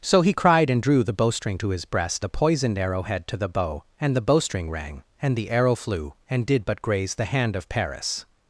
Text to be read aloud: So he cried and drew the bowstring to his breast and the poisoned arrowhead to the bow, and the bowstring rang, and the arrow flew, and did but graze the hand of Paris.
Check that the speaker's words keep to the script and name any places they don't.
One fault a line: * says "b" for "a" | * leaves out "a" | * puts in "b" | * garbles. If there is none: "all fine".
* leaves out "and"